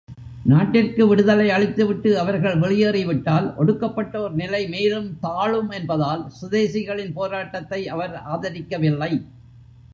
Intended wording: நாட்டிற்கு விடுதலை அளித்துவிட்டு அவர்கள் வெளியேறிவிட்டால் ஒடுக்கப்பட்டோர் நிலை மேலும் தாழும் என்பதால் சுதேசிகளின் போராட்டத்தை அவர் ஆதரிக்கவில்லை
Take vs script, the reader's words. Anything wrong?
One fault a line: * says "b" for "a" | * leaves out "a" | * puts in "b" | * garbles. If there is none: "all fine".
all fine